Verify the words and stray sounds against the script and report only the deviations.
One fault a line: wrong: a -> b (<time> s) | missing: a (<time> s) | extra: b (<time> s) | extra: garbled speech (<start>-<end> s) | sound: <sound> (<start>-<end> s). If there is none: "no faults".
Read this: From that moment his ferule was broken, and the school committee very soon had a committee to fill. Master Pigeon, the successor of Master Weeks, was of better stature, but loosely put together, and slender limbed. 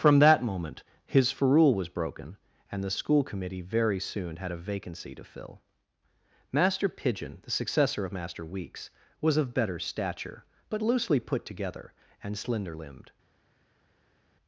wrong: committee -> vacancy (4.6 s)